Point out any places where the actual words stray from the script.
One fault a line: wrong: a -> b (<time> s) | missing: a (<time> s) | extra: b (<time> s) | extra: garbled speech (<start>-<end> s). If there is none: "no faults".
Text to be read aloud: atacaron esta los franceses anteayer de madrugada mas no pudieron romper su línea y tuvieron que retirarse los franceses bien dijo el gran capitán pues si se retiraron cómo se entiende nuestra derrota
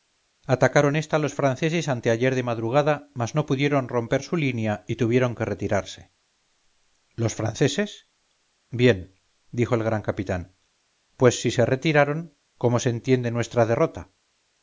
no faults